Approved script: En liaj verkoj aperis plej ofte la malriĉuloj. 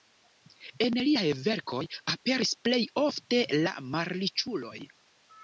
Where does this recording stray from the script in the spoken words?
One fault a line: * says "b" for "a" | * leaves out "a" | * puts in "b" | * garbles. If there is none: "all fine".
all fine